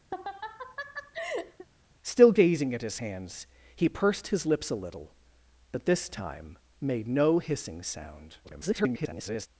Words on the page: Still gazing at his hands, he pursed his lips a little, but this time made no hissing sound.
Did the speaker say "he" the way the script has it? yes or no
yes